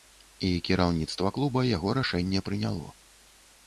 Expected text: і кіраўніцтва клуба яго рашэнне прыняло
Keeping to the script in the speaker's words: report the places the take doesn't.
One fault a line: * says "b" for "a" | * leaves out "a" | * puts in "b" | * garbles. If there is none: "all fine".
all fine